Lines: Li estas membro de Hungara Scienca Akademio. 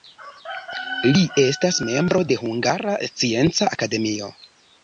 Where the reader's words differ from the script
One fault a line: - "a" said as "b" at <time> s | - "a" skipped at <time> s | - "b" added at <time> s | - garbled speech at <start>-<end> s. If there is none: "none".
none